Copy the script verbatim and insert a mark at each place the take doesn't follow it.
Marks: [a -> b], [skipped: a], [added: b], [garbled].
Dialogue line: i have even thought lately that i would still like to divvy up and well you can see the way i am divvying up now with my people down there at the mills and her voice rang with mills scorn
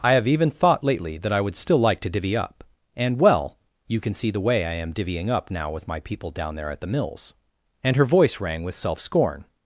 i have even thought lately that i would still like to divvy up and well you can see the way i am divvying up now with my people down there at the mills and her voice rang with [mills -> self] scorn